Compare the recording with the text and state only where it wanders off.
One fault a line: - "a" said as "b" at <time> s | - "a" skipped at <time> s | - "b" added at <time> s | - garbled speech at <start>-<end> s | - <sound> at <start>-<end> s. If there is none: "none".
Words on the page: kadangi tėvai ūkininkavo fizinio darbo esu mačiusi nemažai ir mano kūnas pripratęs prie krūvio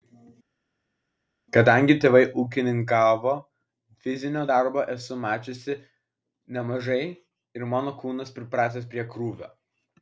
none